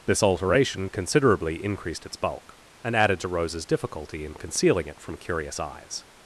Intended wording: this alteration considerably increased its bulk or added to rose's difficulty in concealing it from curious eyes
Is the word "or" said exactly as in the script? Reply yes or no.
no